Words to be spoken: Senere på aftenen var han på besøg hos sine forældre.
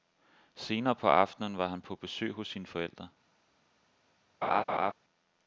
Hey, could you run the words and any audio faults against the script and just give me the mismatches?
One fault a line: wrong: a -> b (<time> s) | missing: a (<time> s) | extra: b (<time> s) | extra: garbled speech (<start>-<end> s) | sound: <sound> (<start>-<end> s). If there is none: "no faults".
sound: laugh (4.4-4.9 s)